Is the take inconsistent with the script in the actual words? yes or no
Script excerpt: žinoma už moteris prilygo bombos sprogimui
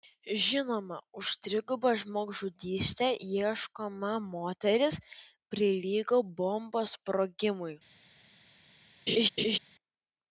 yes